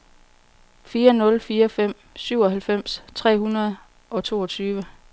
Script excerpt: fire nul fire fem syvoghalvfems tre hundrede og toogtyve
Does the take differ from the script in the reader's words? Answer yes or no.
no